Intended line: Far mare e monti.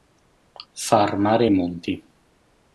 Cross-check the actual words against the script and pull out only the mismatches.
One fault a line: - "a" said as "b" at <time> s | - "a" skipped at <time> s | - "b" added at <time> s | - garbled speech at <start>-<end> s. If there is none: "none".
none